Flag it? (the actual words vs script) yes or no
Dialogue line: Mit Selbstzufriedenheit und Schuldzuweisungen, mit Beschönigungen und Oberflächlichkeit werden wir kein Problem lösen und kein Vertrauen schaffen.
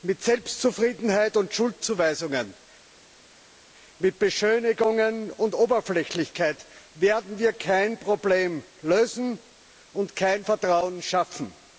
no